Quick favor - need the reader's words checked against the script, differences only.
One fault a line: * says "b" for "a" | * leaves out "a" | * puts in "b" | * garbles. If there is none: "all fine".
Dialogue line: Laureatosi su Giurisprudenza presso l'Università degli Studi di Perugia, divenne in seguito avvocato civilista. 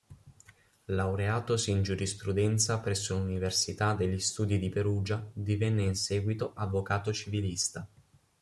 * says "in" for "su"